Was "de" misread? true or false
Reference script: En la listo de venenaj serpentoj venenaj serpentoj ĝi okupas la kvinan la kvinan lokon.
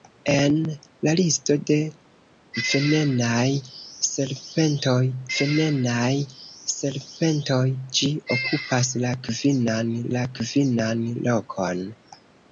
false